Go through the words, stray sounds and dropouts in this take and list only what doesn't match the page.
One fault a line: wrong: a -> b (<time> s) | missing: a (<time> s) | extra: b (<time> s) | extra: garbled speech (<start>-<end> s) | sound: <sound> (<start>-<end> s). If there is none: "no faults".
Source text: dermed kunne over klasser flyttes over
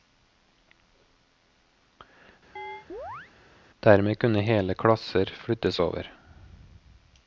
sound: chirp (2.6-3.3 s)
wrong: over -> hele (4.4 s)